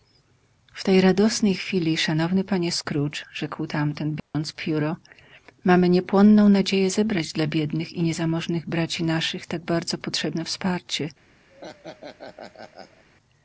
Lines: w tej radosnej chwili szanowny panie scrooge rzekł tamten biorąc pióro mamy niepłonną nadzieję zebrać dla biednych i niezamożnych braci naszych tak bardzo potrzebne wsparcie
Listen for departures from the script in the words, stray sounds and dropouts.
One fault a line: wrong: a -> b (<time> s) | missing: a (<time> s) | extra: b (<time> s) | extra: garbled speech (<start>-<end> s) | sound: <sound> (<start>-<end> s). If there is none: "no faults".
sound: dropout (4.2-4.3 s)
sound: laugh (11.5-13.0 s)